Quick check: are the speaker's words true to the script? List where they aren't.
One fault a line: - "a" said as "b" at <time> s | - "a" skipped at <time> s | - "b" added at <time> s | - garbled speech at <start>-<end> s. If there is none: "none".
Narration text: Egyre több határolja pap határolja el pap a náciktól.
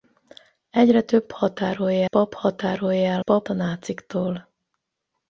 none